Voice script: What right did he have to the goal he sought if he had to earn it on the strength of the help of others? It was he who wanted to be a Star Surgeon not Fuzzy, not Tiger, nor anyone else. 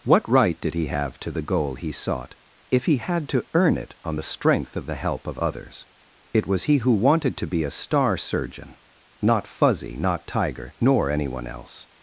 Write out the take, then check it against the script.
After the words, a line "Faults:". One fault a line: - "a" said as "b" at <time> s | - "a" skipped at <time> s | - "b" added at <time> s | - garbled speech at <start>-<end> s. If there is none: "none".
What right did he have to the goal he sought if he had to earn it on the strength of the help of others? It was he who wanted to be a Star Surgeon not Fuzzy, not Tiger, nor anyone else.
Faults:
none